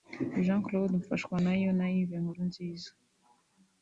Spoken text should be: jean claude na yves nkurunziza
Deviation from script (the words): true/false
true